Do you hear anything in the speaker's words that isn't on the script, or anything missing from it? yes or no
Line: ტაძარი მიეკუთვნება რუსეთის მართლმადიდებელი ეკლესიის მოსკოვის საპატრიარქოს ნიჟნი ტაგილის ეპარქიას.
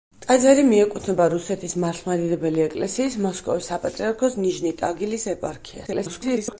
yes